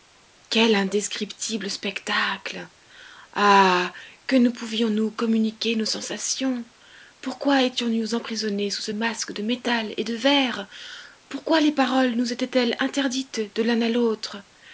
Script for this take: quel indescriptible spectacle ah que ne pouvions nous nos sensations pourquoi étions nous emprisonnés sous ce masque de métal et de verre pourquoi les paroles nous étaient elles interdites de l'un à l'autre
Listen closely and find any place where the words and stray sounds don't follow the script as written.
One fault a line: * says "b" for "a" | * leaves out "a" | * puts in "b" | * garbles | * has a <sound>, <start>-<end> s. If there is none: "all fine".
* puts in "communiquer"